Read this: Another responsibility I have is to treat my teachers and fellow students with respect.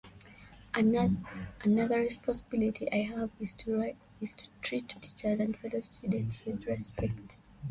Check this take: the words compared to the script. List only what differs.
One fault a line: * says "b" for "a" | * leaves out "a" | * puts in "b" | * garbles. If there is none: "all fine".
* leaves out "my"